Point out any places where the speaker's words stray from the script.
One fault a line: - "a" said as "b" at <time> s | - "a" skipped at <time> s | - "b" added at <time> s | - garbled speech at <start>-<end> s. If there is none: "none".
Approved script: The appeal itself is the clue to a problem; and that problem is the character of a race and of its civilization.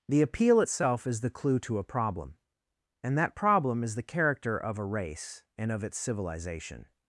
none